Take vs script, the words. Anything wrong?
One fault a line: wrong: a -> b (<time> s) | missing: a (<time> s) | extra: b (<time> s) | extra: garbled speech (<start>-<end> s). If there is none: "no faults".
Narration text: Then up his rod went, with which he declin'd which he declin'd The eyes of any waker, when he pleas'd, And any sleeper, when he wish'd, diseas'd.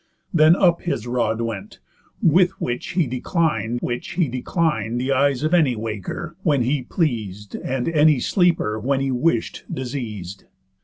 no faults